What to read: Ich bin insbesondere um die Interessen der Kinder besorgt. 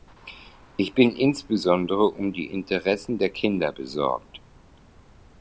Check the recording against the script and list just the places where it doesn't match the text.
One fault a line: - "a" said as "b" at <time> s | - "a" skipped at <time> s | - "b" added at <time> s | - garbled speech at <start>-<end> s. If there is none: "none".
none